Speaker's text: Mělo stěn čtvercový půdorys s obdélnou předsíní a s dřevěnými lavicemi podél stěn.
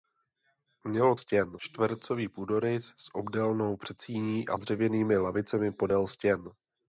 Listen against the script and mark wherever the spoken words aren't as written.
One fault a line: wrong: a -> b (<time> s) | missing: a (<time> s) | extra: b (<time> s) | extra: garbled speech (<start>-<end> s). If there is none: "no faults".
no faults